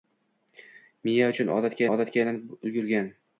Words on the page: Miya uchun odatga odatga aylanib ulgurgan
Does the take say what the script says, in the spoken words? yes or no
yes